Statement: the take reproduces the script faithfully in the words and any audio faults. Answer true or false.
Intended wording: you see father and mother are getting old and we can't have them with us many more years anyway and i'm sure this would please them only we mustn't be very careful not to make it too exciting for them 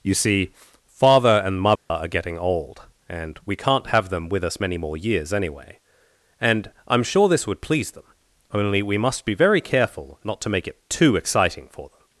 false